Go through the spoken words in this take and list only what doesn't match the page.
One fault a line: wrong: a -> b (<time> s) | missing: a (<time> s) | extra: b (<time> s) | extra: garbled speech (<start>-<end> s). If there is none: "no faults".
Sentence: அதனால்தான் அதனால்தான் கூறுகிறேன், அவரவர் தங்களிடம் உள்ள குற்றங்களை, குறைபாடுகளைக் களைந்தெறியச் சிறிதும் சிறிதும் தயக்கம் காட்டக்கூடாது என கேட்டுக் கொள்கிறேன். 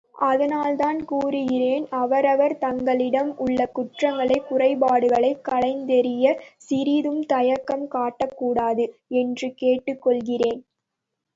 missing: அதனால்தான் (1.1 s)
missing: சிறிதும் (7.2 s)
wrong: என -> என்று (9.2 s)